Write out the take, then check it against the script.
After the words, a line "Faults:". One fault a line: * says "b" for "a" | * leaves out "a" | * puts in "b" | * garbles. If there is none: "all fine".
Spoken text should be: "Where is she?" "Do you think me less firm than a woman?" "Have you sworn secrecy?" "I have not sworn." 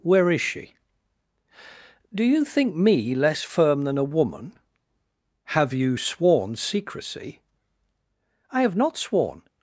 "Where is she?" "Do you think me less firm than a woman?" "Have you sworn secrecy?" "I have not sworn."
Faults:
all fine